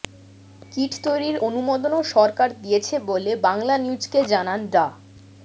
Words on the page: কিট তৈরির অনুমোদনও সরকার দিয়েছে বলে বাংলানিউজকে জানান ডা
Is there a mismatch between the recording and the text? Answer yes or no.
no